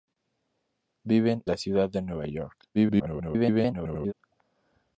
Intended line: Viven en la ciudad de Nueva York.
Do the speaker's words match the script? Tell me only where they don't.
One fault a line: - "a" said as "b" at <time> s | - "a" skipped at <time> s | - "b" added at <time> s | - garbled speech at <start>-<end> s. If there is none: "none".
- "en" skipped at 1.4 s
- garbled speech at 2.7-4.1 s